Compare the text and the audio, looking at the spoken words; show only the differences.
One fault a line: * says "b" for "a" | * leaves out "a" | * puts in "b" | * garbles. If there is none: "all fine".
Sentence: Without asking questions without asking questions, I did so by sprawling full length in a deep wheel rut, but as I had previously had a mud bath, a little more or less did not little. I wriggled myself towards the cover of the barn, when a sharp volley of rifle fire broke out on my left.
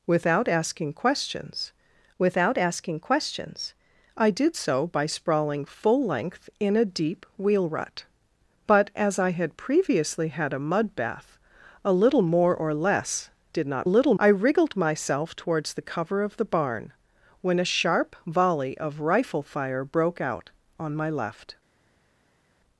all fine